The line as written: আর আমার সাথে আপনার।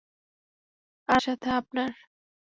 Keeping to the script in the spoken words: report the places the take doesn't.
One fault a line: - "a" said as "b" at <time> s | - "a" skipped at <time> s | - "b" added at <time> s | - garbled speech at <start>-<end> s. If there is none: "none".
- "আমার" skipped at 1.2 s